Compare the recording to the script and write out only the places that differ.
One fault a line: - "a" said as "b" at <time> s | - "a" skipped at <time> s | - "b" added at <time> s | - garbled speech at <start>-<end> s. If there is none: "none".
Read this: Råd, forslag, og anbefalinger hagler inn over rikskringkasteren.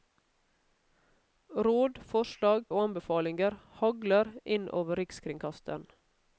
none